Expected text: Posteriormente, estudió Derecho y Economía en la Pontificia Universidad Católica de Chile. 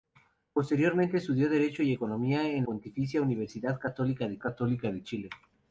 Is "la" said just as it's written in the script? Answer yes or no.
no